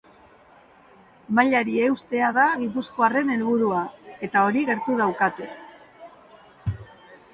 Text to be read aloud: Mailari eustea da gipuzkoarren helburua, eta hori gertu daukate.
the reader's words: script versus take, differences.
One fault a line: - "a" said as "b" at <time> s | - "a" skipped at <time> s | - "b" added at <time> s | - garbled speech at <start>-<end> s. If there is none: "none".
none